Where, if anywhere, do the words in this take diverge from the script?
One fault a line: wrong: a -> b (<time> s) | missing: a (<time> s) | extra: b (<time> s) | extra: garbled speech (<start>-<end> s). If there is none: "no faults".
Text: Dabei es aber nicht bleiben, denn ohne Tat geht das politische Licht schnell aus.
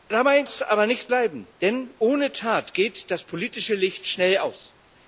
no faults